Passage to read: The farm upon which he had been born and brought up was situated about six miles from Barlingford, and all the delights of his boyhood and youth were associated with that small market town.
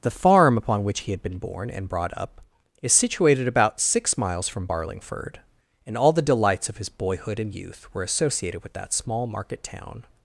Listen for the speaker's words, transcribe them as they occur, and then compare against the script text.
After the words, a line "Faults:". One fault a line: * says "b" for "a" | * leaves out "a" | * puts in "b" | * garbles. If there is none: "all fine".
The farm upon which he had been born and brought up is situated about six miles from Barlingford, and all the delights of his boyhood and youth were associated with that small market town.
Faults:
* says "is" for "was"